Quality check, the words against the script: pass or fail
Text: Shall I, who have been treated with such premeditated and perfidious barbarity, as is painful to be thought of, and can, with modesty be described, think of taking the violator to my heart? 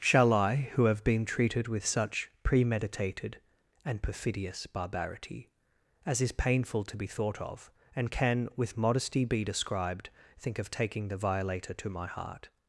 pass